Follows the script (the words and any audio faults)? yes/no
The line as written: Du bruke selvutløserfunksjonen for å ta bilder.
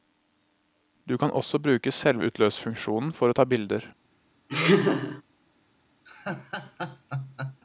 no